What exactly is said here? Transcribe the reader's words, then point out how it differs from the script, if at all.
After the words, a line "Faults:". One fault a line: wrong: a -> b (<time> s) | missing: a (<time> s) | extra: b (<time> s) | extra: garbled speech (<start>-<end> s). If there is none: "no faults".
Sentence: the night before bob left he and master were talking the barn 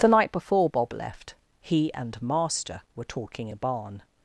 the night before bob left he and master were talking the barn
Faults:
no faults